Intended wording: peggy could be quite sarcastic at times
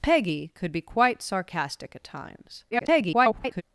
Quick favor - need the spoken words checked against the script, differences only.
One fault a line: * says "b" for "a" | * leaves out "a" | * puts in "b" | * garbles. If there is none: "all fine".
* garbles